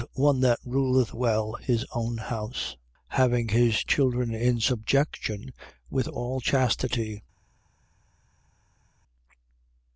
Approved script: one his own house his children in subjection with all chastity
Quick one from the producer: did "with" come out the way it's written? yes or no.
yes